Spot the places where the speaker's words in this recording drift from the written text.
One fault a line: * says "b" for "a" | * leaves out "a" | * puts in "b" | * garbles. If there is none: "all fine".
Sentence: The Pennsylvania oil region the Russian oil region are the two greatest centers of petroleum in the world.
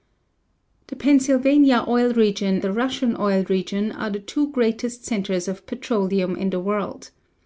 all fine